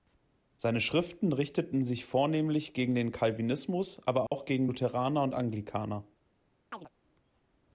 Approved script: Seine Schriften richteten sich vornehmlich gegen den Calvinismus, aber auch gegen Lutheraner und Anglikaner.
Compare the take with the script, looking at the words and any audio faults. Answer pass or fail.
fail